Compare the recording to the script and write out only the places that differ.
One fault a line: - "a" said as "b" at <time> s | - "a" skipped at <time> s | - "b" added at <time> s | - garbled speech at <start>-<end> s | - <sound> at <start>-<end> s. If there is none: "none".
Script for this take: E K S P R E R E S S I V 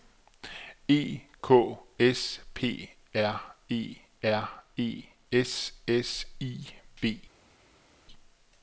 none